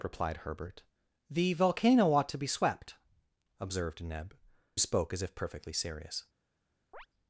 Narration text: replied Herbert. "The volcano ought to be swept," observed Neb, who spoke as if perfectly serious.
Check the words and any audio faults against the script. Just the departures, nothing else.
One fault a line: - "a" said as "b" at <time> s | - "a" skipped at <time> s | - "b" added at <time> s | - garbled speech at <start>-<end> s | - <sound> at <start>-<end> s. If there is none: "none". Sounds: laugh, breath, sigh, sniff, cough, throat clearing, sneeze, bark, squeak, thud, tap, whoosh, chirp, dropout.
- "who" skipped at 4.3 s
- chirp at 6.9-7.1 s